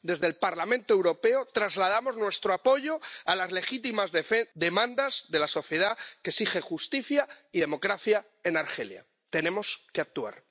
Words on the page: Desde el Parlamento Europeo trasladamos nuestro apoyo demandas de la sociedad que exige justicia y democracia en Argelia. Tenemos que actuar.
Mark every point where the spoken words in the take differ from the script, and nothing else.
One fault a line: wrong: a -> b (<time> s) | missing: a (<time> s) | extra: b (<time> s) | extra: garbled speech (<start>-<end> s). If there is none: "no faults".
extra: a las legítimas (3.2 s)